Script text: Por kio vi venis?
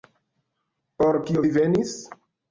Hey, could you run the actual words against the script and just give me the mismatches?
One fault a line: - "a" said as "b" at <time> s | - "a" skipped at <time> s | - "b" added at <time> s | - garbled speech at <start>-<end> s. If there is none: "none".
none